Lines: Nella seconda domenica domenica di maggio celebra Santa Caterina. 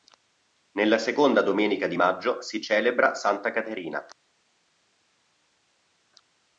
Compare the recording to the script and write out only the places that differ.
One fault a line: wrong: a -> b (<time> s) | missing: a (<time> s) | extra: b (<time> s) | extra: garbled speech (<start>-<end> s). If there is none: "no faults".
missing: domenica (1.9 s)
extra: si (2.4 s)